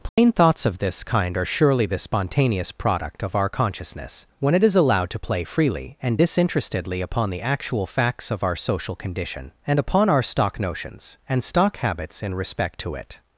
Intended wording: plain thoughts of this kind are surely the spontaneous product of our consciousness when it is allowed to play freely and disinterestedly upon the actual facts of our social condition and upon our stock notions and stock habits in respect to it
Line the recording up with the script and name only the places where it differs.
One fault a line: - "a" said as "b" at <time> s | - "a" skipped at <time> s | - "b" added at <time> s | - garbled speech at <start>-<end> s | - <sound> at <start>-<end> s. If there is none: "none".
- dropout at 0.1-0.2 s